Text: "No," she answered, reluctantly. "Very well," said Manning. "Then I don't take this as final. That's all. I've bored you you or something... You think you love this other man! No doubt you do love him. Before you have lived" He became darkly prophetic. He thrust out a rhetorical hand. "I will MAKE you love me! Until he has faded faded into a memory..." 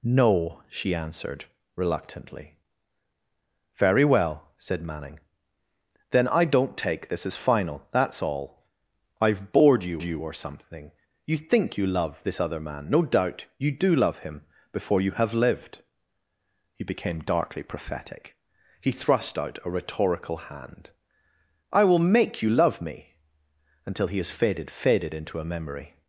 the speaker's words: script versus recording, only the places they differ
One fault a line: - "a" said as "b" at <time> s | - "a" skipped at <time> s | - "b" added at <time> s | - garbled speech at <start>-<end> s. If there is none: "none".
none